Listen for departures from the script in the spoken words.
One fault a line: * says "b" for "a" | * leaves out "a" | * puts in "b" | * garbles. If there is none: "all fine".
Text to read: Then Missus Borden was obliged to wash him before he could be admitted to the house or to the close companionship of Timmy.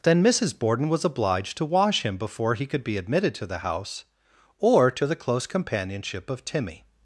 all fine